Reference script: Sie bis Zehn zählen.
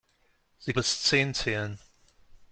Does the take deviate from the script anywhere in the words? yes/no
no